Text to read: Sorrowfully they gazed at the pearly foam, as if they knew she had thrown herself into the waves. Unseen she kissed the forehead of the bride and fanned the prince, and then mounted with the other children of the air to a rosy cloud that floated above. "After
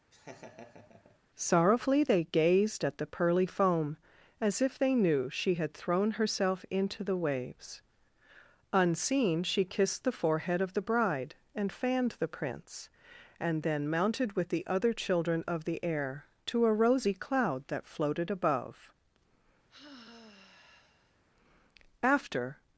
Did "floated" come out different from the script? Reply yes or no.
no